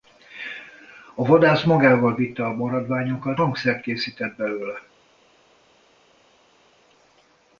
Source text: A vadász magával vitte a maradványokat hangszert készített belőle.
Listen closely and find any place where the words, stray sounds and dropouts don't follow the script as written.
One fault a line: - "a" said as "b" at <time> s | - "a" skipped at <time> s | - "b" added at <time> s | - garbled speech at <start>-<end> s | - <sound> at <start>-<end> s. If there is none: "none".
none